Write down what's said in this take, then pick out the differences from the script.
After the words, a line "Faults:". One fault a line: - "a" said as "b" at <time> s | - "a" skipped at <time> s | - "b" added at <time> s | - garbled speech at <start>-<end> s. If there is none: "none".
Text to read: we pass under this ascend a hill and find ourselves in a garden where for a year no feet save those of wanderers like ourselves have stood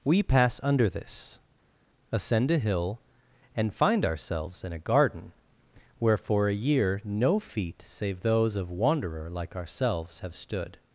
we pass under this ascend a hill and find ourselves in a garden where for a year no feet save those of wanderer like ourselves have stood
Faults:
- "wanderers" said as "wanderer" at 8.7 s